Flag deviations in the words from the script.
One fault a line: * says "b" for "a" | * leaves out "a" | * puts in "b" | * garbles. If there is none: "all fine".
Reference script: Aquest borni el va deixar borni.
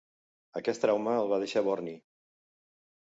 * says "trauma" for "borni"